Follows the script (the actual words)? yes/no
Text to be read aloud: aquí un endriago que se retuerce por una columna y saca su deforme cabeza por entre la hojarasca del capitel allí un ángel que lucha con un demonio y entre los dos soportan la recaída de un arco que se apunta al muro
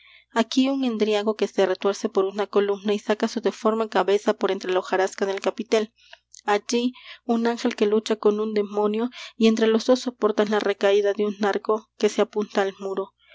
yes